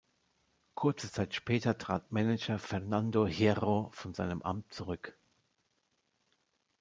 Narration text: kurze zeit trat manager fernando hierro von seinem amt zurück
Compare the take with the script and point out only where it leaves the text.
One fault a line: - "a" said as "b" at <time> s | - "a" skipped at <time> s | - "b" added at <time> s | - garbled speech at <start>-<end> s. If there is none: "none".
- "später" added at 1.4 s